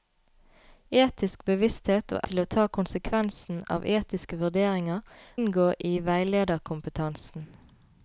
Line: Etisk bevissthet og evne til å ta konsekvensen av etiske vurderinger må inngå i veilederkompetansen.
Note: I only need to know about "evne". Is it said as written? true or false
false